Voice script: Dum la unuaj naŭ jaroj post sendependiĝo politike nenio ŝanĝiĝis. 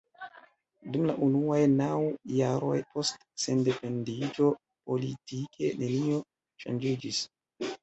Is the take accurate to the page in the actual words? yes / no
yes